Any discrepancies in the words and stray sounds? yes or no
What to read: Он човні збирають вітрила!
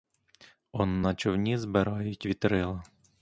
yes